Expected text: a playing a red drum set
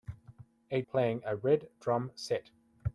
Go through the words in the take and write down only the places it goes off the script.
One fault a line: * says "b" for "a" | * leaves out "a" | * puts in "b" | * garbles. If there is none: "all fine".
all fine